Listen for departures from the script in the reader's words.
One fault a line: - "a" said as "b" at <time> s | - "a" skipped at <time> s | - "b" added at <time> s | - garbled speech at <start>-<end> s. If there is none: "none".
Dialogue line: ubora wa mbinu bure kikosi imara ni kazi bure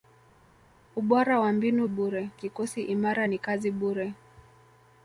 none